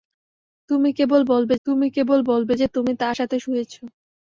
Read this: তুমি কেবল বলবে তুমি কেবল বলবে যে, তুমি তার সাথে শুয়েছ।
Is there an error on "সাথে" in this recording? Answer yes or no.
no